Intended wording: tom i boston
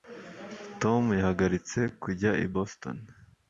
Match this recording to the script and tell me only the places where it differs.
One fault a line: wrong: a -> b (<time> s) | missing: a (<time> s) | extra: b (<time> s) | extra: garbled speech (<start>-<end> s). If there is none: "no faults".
extra: yahagaritse kujya (1.2 s)